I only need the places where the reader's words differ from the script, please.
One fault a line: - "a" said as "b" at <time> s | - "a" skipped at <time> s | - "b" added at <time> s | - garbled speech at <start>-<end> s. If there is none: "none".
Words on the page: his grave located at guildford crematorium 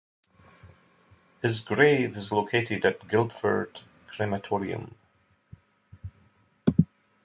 - "is" added at 2.2 s